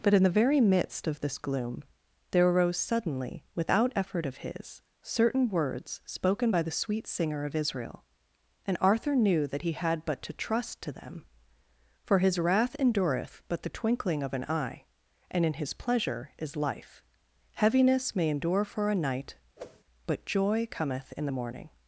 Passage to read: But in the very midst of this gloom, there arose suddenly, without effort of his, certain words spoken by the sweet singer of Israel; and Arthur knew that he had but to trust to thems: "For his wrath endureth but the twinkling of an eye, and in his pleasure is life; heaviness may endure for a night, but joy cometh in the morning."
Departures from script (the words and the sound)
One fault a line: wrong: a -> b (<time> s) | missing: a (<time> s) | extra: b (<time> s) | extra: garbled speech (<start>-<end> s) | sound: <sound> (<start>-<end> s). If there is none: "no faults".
wrong: thems -> them (10.9 s)
sound: whoosh (19.6-19.8 s)